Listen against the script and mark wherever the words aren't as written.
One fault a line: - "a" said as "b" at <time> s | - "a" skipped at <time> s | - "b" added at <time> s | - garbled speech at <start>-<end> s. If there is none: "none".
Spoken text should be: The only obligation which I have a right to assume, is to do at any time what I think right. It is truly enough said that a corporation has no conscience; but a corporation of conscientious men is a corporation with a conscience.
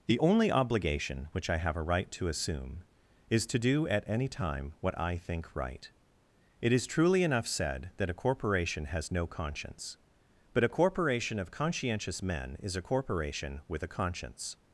none